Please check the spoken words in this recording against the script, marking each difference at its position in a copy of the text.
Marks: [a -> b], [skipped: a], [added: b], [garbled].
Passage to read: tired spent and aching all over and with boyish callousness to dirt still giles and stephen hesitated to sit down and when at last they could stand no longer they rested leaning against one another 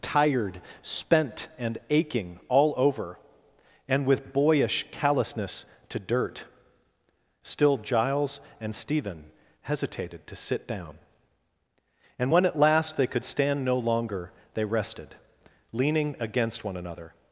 tired spent and aching all over and with boyish callousness to dirt still giles and stephen hesitated to sit down and when at last they could stand no longer they rested leaning against one another